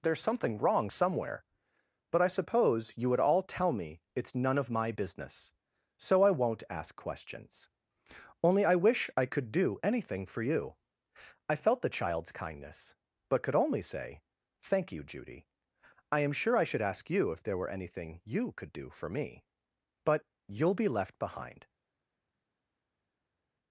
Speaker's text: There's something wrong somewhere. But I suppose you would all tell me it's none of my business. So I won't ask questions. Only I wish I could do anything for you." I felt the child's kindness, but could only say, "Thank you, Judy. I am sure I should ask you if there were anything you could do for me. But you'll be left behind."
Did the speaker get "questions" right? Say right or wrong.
right